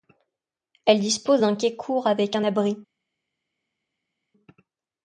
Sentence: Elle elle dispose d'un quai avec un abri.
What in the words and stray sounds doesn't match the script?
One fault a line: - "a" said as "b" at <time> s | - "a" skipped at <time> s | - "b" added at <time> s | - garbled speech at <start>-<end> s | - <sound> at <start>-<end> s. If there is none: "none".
- "elle" skipped at 1.0 s
- "court" added at 1.8 s